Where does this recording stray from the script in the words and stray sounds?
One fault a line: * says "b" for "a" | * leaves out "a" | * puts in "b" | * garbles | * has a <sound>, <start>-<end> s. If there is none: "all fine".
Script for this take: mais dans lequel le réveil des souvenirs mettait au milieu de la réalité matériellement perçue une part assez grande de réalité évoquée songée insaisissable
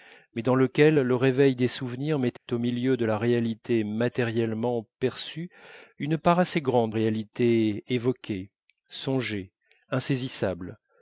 * has a dropout, 2.4-2.5 s
* leaves out "de"